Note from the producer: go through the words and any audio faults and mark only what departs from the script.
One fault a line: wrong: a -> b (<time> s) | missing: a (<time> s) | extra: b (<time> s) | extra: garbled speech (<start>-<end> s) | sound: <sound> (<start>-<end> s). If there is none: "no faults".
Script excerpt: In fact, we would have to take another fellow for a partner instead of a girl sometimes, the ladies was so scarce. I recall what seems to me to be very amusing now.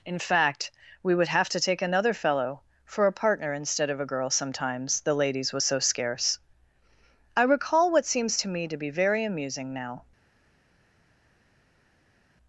no faults